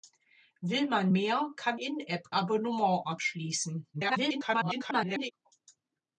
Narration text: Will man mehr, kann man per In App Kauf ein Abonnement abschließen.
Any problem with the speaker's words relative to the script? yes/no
yes